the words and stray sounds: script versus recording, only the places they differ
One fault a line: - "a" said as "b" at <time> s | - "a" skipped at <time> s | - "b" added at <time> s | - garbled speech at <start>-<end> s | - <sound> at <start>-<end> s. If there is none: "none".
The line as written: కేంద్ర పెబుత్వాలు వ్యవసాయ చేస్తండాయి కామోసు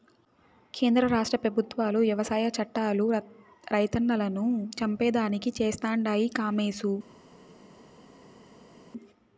- "రాష్ట్ర" added at 1.1 s
- "చట్టాలు రైతన్నలను చంపేదానికి" added at 2.6 s